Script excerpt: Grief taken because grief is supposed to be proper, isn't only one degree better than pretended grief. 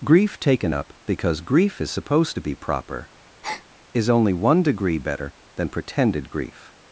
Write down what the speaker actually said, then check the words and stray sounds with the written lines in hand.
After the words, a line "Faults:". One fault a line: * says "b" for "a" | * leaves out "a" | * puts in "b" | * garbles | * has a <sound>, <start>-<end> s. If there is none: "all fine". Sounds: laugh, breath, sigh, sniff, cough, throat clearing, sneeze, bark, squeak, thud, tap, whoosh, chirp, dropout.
Grief taken up because grief is supposed to be proper, is only one degree better than pretended grief.
Faults:
* puts in "up"
* has a breath, 3.4-3.7 s
* says "is" for "isn't"